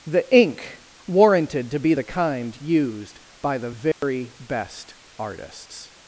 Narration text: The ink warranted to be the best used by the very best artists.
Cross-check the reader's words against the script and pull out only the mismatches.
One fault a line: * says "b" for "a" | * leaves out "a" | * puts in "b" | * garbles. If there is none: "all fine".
* says "kind" for "best"